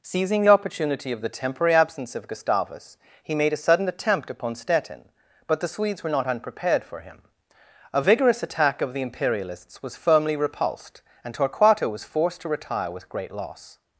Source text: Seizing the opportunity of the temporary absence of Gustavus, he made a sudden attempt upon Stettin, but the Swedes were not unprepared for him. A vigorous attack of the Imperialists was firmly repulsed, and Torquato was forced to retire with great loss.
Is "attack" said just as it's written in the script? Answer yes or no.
yes